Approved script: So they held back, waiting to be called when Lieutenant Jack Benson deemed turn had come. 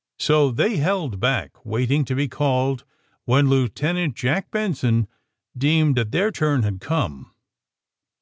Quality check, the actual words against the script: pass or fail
fail